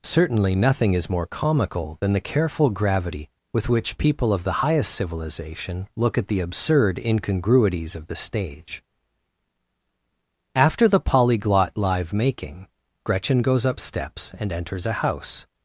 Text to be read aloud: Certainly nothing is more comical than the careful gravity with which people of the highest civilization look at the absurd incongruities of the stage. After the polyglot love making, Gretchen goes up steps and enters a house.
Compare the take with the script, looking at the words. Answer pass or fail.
fail